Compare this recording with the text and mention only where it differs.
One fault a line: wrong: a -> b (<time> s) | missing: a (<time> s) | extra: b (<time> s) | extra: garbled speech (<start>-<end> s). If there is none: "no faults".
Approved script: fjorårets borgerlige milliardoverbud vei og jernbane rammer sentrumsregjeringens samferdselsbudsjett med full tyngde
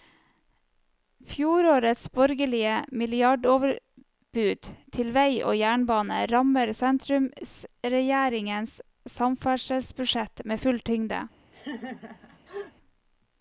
extra: til (5.0 s)